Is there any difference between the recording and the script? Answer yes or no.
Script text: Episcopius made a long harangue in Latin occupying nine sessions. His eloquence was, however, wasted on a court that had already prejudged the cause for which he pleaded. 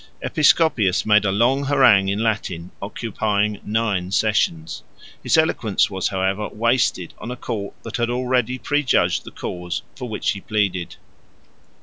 no